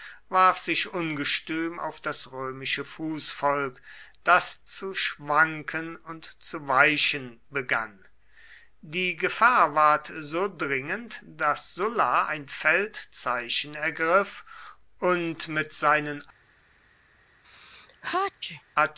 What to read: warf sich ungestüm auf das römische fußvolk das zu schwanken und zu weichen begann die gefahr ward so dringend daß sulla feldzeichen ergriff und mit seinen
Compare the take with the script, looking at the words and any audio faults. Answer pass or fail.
fail